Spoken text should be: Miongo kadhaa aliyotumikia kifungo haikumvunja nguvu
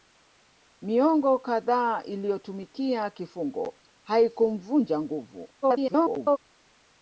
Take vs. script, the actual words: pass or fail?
fail